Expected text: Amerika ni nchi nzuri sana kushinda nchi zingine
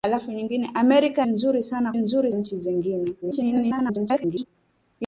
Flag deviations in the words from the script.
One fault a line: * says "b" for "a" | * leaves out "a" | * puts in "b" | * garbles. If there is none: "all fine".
* leaves out "ni nchi"
* says "nzuri" for "kushinda"
* garbles